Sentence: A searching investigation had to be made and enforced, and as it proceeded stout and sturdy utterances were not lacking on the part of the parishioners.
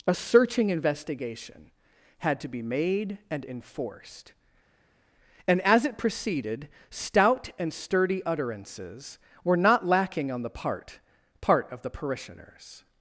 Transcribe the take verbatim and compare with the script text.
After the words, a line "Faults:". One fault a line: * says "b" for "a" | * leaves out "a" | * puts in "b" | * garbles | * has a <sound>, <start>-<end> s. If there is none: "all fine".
A searching investigation had to be made and enforced, and as it proceeded stout and sturdy utterances were not lacking on the part part of the parishioners.
Faults:
* puts in "part"